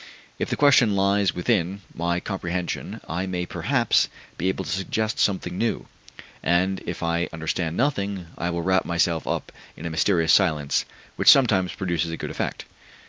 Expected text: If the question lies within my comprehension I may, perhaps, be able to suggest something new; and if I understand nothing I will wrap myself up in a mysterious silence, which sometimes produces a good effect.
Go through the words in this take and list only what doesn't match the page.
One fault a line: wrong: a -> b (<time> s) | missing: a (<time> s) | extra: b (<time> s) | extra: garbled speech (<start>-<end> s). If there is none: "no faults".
no faults